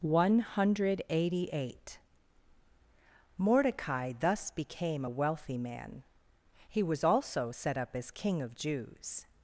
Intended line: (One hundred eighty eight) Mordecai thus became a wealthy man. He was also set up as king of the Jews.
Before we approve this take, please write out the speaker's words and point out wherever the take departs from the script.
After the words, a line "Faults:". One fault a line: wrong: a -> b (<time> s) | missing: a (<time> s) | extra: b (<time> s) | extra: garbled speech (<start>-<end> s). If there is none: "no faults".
(One hundred eighty eight) Mordecai thus became a wealthy man. He was also set up as king of Jews.
Faults:
missing: the (8.5 s)